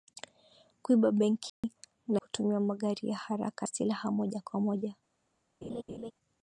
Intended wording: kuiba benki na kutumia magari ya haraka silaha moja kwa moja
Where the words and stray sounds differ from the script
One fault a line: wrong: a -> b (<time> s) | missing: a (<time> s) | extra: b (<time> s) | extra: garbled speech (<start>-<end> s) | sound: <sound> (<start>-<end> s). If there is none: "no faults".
sound: dropout (1.5-1.6 s)
sound: laugh (5.6-6.1 s)